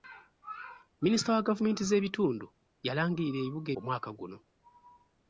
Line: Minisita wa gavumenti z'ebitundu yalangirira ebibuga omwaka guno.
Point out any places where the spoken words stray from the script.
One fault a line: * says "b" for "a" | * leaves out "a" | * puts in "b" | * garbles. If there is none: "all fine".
all fine